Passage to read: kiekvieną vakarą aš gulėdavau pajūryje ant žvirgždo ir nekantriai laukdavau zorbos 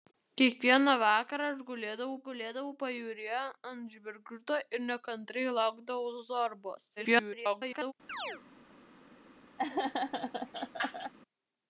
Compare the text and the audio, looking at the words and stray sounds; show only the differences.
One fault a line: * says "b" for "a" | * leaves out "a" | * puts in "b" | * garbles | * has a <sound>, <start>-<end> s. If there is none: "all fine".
* puts in "gulėdavau"
* garbles
* has a chirp, 8.1-8.4 s
* has a laugh, 9.6-11.1 s